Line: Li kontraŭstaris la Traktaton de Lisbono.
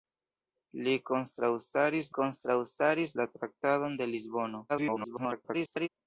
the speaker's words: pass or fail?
fail